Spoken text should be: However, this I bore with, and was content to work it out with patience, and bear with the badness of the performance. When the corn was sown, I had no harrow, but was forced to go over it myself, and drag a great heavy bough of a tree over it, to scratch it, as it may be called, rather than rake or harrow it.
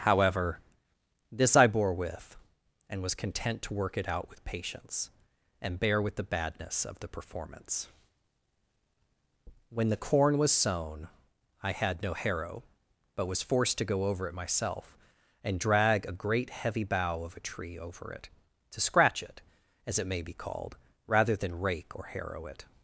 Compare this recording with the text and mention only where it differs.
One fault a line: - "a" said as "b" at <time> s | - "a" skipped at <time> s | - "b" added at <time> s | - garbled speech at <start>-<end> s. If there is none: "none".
none